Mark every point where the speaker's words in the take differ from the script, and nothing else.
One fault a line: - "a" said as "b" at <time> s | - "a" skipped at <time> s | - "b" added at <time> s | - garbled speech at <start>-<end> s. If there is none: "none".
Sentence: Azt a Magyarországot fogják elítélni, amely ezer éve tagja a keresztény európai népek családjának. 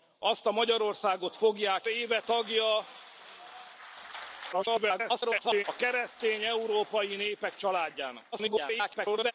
- "elítélni amely ezer" skipped at 1.9 s
- garbled speech at 4.5-5.6 s
- garbled speech at 8.3-9.3 s